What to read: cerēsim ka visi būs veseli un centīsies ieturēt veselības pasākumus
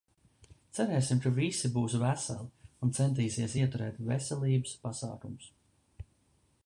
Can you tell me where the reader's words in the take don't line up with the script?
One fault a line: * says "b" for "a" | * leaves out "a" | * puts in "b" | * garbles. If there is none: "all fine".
all fine